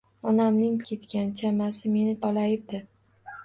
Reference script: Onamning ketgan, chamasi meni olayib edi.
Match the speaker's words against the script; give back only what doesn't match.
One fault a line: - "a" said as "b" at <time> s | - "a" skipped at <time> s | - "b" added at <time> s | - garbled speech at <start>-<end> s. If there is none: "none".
none